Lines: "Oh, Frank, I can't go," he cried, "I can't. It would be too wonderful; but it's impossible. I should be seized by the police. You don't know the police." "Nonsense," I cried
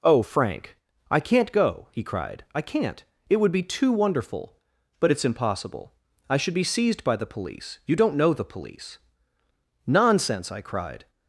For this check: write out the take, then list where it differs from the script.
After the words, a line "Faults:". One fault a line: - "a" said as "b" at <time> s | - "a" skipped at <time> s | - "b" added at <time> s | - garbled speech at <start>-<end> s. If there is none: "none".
"Oh, Frank, I can't go," he cried, "I can't. It would be too wonderful; but it's impossible. I should be seized by the police. You don't know the police." "Nonsense," I cried
Faults:
none